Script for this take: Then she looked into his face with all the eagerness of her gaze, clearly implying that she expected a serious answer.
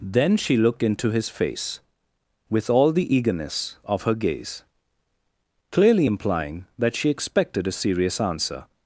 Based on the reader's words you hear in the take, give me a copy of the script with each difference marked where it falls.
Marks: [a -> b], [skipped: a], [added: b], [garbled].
Then she looked into his face with all the eagerness of her gaze, clearly implying that she expected a serious answer.